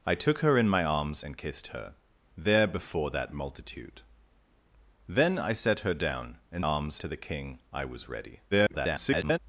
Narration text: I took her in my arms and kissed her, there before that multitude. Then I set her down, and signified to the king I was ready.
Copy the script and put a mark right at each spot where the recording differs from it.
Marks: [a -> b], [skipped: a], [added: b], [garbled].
I took her in my arms and kissed her, there before that multitude. Then I set her down, and [signified -> arms] to the king I was ready. [garbled]